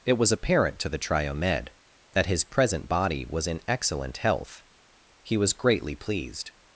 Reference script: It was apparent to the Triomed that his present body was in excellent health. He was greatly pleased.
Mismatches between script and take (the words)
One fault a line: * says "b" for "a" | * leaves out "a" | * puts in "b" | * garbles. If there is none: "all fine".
all fine